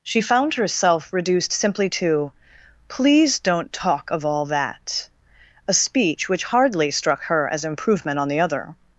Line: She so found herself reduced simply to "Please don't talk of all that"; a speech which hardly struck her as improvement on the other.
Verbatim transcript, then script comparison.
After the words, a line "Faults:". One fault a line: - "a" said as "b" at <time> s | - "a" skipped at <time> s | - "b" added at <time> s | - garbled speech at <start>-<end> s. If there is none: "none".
She found herself reduced simply to "Please don't talk of all that"; a speech which hardly struck her as improvement on the other.
Faults:
- "so" skipped at 0.2 s